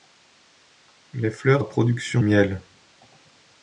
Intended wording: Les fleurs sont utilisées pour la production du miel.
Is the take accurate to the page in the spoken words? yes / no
no